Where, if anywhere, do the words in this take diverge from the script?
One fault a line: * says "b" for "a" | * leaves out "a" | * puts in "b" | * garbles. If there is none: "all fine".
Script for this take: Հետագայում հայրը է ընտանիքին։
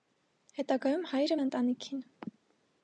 all fine